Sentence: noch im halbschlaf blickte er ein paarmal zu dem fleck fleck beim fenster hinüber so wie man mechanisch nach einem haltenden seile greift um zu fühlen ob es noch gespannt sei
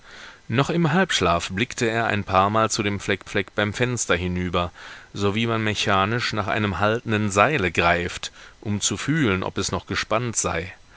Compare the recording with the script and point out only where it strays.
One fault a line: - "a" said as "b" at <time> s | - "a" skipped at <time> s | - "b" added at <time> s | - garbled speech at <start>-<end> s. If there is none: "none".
none